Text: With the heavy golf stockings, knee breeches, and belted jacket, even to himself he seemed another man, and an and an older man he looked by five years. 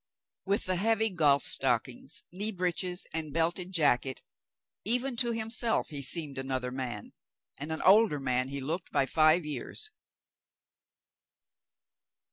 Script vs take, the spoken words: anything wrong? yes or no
yes